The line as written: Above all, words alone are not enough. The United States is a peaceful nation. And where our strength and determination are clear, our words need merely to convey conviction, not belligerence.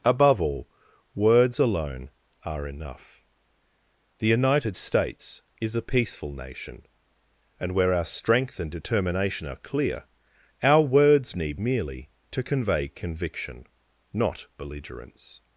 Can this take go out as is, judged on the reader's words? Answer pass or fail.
fail